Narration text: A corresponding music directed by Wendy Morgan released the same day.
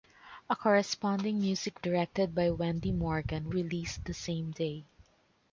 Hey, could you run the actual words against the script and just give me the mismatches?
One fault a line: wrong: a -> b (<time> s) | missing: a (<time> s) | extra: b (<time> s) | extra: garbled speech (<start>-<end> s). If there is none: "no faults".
no faults